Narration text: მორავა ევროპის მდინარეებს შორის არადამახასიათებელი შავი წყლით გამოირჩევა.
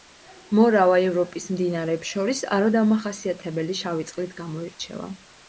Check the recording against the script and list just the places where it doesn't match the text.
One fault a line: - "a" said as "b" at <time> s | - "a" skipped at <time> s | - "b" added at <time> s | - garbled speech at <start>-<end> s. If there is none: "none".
none